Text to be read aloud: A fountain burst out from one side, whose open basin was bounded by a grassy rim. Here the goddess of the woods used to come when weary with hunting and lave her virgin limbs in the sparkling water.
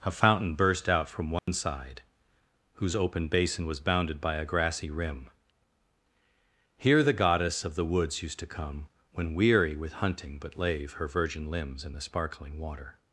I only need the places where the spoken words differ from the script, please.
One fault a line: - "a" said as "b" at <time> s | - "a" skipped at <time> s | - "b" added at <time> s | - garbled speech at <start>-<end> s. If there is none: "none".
- "and" said as "but" at 10.4 s